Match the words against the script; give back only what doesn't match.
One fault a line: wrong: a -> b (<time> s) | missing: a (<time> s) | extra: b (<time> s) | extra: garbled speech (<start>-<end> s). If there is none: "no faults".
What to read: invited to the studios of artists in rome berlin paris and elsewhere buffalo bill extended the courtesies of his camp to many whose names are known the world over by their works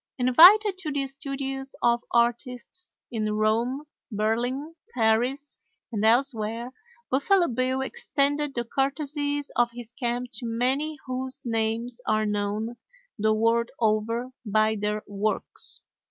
no faults